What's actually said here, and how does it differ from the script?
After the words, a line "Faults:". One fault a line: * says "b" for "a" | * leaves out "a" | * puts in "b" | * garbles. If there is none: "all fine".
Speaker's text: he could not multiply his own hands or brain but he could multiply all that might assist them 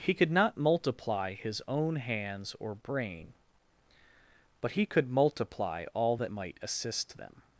he could not multiply his own hands or brain but he could multiply all that might assist them
Faults:
all fine